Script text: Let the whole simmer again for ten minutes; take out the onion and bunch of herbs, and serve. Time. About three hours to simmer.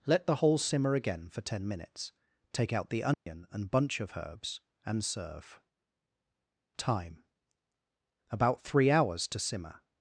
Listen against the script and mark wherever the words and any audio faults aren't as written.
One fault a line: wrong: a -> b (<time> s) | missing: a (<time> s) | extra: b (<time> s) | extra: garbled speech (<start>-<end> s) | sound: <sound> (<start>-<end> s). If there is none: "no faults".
sound: dropout (3.1-3.3 s)